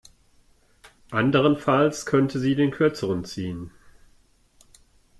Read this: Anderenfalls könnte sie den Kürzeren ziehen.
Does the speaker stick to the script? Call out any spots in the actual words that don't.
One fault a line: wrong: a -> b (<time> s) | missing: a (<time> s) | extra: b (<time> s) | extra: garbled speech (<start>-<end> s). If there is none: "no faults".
no faults